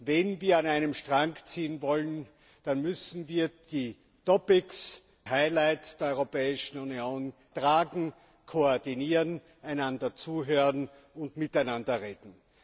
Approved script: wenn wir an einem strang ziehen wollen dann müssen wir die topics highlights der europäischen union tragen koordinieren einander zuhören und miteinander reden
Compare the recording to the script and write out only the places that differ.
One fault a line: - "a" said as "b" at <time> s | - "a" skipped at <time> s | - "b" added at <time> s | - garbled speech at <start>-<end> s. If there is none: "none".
none